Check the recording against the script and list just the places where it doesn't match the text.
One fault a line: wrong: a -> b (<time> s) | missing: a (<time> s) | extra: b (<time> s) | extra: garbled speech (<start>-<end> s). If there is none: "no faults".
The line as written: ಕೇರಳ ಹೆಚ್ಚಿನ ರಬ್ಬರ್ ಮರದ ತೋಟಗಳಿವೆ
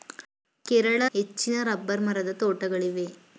no faults